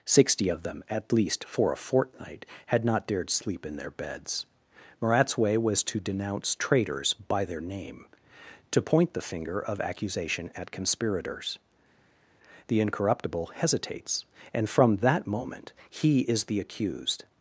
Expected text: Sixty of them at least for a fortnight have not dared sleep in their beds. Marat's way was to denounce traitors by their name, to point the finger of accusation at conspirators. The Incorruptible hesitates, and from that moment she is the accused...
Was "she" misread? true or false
true